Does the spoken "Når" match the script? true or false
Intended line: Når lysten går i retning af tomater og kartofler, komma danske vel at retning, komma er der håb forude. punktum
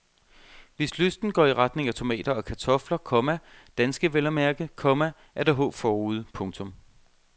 false